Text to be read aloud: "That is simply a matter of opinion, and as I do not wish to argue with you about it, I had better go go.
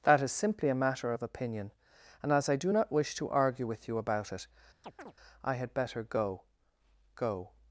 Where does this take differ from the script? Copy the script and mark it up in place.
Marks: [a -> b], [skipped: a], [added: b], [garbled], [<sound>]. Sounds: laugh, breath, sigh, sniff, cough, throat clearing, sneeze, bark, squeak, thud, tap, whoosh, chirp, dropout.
"That is simply a matter of opinion, and as I do not wish to argue with you about it, [chirp] I had better go go.